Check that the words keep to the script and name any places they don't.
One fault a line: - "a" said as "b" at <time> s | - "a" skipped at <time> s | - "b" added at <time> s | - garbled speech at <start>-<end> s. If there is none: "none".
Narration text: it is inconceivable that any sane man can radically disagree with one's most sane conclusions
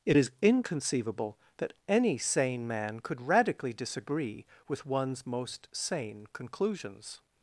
- "can" said as "could" at 3.0 s